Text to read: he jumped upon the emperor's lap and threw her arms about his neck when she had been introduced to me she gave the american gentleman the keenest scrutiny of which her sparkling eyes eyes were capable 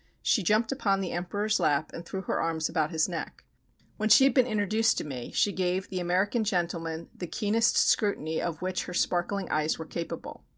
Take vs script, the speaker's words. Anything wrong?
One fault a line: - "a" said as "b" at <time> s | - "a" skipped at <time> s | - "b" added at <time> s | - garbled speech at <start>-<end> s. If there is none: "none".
- "he" said as "she" at 0.2 s
- "eyes" skipped at 9.8 s